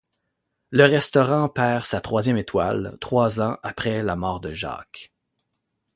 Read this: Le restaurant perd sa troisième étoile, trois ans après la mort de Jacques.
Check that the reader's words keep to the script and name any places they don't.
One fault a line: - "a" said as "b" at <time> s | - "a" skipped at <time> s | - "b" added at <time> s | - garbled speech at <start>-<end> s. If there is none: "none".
none